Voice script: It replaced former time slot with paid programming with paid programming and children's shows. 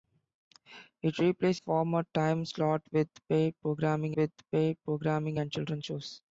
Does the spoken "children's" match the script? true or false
true